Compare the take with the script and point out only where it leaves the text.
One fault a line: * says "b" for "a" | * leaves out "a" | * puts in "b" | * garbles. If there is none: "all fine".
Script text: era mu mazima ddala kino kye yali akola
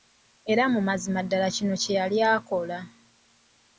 all fine